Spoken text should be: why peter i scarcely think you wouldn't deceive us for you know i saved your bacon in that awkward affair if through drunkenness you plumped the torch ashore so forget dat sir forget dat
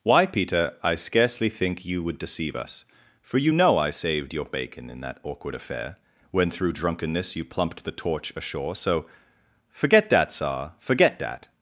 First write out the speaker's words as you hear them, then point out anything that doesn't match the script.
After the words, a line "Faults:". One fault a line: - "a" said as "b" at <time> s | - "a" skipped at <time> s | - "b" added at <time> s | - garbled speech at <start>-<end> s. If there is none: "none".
why peter i scarcely think you would deceive us for you know i saved your bacon in that awkward affair when through drunkenness you plumped the torch ashore so forget dat sir forget dat
Faults:
- "wouldn't" said as "would" at 2.0 s
- "if" said as "when" at 6.3 s